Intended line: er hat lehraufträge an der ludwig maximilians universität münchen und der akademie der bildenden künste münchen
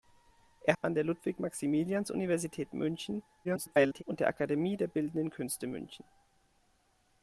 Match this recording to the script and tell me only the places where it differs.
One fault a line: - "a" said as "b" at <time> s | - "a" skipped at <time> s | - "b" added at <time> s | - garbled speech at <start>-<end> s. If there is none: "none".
- "hat lehraufträge" skipped at 0.8 s
- garbled speech at 3.4-4.0 s